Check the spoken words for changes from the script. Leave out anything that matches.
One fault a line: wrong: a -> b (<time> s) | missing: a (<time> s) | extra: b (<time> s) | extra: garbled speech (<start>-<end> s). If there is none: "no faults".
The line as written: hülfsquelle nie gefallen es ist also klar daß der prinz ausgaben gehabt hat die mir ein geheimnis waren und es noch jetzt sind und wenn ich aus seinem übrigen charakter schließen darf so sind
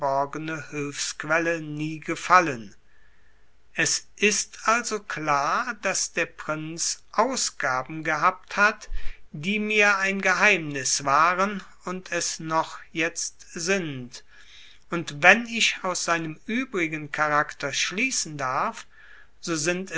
no faults